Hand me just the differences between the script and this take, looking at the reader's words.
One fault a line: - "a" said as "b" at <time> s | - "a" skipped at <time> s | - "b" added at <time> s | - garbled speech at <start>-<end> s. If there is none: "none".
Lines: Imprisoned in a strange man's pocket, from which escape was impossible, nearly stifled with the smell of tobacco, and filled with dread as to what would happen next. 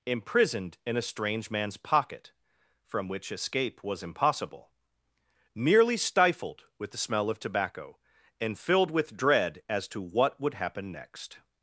none